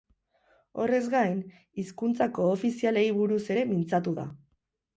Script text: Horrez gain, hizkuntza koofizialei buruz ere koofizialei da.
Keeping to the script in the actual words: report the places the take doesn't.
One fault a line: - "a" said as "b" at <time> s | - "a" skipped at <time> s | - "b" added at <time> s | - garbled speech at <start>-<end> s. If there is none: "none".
- "koofizialei" said as "mintzatu" at 3.7 s